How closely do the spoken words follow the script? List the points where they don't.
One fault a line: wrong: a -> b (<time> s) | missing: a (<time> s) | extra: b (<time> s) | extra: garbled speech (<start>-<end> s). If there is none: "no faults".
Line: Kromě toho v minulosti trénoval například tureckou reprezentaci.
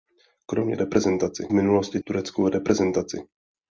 wrong: toho -> reprezentaci (0.7 s)
missing: trénoval například (2.0 s)